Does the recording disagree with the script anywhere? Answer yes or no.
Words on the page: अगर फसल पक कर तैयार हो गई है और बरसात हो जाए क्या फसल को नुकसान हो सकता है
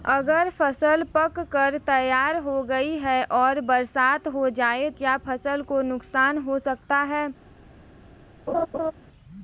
no